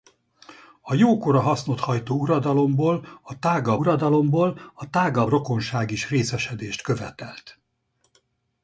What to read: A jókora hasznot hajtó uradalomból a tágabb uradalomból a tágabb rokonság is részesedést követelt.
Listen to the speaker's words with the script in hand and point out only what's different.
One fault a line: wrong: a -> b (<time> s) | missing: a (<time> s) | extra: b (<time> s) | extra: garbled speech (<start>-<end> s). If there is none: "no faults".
no faults